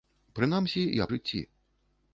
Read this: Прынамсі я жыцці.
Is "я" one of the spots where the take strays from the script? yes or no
no